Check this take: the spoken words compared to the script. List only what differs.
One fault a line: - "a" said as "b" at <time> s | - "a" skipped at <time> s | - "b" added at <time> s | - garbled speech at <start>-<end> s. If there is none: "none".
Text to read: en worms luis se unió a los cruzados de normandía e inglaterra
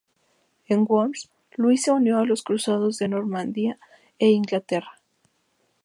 none